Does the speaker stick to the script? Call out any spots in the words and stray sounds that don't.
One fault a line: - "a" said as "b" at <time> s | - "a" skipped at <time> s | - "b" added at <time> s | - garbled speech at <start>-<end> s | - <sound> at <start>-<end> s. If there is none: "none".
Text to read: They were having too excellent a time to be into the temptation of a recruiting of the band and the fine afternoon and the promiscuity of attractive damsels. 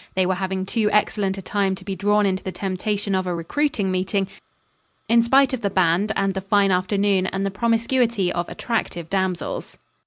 - "drawn" added at 1.9 s
- "meeting in spite" added at 3.9 s